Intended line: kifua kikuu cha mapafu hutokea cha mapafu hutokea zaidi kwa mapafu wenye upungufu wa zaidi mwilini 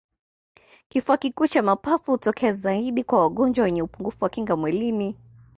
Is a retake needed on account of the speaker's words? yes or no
yes